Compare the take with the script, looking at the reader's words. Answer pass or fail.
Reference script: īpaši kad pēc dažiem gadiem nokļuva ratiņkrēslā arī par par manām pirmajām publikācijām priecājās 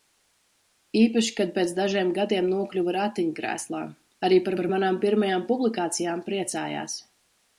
pass